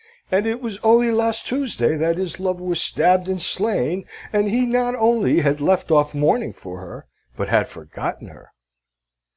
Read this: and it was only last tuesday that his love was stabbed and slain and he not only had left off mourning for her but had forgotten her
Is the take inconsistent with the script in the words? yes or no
no